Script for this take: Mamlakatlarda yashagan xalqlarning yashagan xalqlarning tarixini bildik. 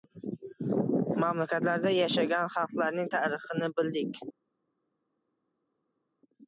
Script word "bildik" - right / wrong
right